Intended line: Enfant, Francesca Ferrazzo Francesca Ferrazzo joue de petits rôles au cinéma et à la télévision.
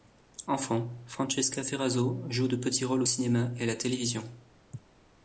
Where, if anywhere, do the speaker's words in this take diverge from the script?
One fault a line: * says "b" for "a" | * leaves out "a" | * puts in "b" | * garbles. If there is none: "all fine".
* leaves out "Francesca Ferrazzo"